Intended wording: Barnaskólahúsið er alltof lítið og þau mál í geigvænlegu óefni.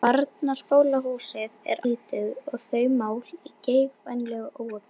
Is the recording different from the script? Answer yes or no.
yes